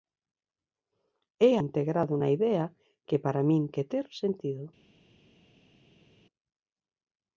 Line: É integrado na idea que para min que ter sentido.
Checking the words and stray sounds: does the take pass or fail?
pass